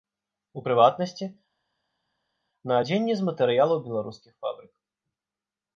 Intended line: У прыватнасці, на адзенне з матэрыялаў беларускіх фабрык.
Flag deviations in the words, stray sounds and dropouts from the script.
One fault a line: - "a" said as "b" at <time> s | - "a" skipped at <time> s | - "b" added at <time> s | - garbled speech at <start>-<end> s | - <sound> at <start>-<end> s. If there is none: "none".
none